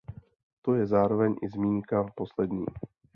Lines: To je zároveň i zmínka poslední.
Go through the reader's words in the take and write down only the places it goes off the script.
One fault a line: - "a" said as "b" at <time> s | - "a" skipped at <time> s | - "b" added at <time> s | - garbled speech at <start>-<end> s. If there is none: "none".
none